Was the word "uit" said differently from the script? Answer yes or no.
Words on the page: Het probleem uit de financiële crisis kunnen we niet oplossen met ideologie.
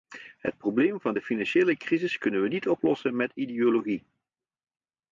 yes